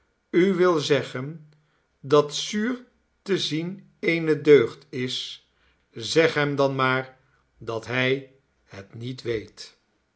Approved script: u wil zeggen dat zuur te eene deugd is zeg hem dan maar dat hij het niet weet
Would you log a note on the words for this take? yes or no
yes